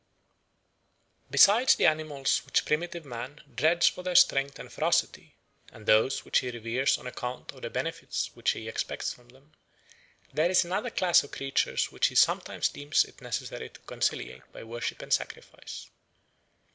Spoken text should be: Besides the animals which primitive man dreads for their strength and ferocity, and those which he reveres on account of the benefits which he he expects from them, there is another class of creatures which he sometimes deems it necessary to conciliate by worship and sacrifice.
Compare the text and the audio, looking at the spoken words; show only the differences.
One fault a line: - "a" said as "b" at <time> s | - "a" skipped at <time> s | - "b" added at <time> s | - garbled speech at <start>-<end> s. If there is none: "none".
- "he" skipped at 8.7 s